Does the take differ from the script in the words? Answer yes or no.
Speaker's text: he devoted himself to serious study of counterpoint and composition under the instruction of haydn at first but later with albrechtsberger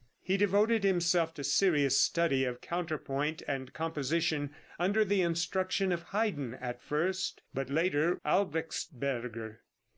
yes